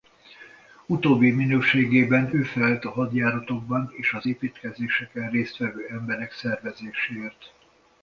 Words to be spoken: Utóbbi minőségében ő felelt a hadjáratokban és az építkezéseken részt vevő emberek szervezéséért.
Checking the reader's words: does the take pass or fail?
pass